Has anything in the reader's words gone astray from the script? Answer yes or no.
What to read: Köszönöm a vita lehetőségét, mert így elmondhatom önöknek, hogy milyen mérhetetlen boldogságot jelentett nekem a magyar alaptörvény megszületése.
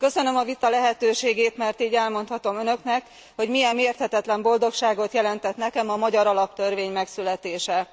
no